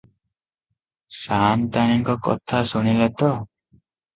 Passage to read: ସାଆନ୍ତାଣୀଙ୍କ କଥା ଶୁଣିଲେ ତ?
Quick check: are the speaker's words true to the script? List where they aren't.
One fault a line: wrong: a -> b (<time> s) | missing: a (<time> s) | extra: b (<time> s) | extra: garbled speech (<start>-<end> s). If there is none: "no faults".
no faults